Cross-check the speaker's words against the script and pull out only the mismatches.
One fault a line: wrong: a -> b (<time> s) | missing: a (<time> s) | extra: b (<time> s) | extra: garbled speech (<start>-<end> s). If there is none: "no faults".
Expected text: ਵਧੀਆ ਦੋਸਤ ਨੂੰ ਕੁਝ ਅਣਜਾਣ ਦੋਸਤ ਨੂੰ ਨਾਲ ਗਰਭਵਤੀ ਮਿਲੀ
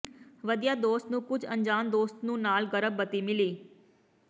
no faults